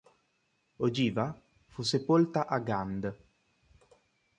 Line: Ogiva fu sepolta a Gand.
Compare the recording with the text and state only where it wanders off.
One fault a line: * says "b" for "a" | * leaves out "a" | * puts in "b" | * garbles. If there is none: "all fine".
all fine